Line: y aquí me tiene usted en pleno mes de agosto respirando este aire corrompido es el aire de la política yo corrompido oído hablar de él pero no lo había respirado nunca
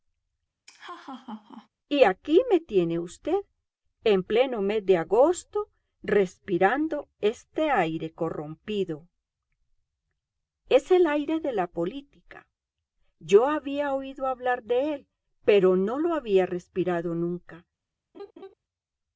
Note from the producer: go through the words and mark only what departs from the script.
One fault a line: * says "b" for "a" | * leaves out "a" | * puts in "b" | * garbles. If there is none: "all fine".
* says "había" for "corrompido"